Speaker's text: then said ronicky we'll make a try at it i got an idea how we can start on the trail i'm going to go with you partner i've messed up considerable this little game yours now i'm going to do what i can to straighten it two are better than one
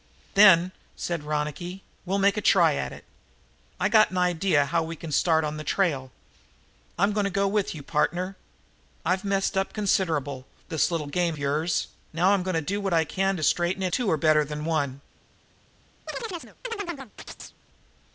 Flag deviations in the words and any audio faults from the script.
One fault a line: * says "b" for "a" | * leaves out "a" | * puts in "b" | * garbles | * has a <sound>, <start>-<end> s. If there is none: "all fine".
* has a chirp, 16.1-17.6 s